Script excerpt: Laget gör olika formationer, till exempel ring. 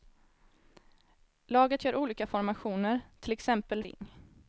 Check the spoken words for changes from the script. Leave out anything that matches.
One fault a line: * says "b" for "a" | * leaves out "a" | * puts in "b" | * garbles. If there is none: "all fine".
all fine